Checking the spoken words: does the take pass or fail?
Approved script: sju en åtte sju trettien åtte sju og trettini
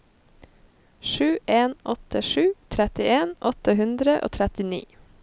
fail